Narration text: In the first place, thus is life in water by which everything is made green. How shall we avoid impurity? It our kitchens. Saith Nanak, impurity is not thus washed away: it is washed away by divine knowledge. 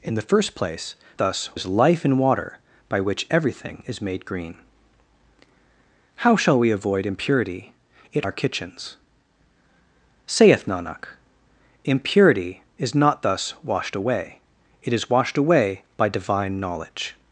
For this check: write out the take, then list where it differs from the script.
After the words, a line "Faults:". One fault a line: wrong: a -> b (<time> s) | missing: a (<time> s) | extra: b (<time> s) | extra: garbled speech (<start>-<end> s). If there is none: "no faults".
In the first place, thus is life in water by which everything is made green. How shall we avoid impurity? It our kitchens. Saith Nanak, impurity is not thus washed away: it is washed away by divine knowledge.
Faults:
no faults